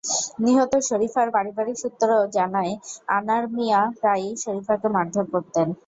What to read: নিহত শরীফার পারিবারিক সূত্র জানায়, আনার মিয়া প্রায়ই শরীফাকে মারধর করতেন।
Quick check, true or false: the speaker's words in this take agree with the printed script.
true